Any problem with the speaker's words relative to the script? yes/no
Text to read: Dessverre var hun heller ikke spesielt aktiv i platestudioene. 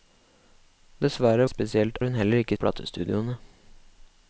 yes